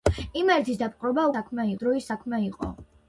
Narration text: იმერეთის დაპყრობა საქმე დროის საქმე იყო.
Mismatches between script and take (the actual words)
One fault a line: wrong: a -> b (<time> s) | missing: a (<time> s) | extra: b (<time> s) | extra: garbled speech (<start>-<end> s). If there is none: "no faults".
no faults